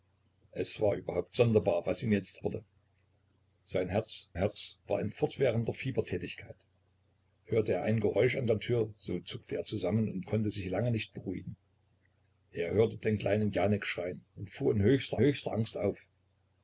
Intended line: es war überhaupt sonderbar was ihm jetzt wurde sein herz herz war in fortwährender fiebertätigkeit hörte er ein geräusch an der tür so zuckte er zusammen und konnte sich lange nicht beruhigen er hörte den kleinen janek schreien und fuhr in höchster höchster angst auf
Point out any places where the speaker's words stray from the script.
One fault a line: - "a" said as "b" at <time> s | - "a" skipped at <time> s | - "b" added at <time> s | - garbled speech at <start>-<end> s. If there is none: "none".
none